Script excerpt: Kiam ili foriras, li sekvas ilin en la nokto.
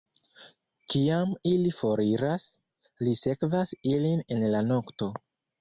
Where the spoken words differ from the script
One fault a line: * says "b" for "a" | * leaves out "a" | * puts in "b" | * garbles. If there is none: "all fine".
all fine